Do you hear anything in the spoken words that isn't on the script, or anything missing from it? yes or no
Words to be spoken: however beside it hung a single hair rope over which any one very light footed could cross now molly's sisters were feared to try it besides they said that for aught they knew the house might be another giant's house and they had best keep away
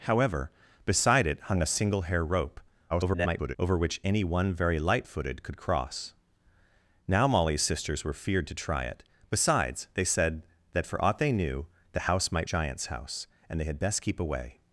yes